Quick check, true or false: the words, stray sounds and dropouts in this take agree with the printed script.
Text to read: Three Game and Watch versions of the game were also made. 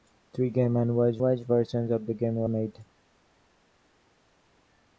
false